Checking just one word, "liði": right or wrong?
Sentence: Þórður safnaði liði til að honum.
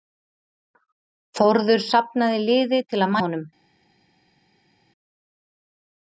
right